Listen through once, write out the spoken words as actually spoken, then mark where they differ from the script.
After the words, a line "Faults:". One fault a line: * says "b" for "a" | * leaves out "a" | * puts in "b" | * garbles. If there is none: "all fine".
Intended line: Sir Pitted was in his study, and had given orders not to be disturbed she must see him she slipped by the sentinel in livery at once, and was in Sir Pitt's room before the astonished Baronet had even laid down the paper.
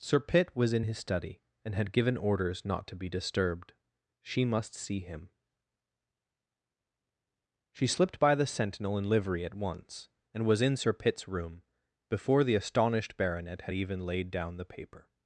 Sir Pitt was in his study, and had given orders not to be disturbed she must see him she slipped by the sentinel in livery at once, and was in Sir Pitt's room before the astonished Baronet had even laid down the paper.
Faults:
* says "Pitt" for "Pitted"